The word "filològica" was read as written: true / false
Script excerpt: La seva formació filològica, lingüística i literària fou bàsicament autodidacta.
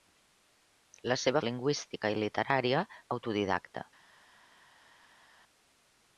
false